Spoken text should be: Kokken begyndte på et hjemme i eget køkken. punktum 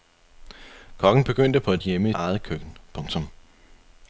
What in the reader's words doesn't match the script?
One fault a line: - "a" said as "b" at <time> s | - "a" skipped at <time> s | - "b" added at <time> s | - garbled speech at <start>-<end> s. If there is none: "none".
none